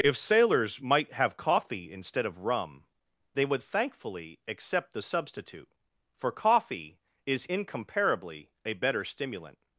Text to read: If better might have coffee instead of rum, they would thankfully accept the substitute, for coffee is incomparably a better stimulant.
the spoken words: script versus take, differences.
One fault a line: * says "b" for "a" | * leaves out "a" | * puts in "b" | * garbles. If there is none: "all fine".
* says "sailors" for "better"